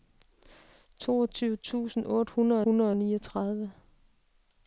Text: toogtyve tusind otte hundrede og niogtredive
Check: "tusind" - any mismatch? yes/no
no